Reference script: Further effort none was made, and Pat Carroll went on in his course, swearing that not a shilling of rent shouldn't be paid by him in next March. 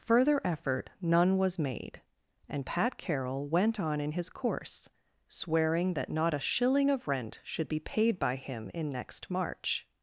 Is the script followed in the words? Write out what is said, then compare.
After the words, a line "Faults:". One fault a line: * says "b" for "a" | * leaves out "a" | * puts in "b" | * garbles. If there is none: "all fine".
Further effort none was made, and Pat Carroll went on in his course, swearing that not a shilling of rent should be paid by him in next March.
Faults:
* says "should" for "shouldn't"